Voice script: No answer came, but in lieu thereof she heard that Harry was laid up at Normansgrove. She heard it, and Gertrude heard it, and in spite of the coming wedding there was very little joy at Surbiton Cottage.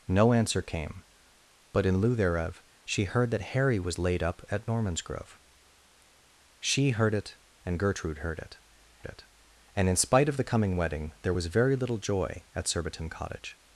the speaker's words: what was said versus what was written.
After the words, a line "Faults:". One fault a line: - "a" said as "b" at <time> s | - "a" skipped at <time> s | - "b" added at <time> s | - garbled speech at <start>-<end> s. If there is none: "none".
No answer came, but in lieu thereof she heard that Harry was laid up at Normansgrove. She heard it, and Gertrude heard it it, and in spite of the coming wedding there was very little joy at Surbiton Cottage.
Faults:
- "it" added at 9.1 s